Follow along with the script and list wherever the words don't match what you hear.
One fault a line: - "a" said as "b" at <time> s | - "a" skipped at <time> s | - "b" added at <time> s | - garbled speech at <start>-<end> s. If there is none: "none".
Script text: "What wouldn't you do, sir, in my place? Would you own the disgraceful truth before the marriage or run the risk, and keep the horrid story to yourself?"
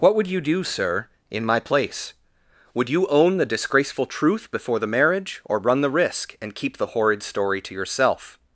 - "wouldn't" said as "would" at 0.1 s